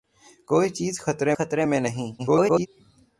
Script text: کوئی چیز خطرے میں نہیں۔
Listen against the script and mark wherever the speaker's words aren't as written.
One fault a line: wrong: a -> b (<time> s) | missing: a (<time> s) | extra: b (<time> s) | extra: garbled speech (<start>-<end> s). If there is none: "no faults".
extra: خطرے (1.3 s)
extra: garbled speech (2.2-2.7 s)